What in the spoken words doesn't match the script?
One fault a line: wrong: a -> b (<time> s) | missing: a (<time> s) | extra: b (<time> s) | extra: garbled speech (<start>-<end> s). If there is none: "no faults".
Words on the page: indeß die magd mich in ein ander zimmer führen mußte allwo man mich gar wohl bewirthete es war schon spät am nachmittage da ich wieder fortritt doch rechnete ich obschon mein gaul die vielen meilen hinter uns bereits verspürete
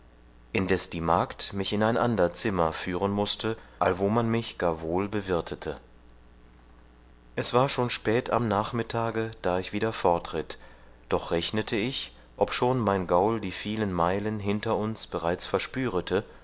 no faults